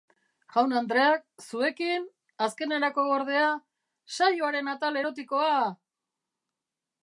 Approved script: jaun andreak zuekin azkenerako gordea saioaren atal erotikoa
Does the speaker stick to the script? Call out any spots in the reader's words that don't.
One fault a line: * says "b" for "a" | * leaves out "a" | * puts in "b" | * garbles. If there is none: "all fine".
all fine